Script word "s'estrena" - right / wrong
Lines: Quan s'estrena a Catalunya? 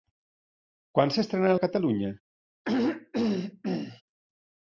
right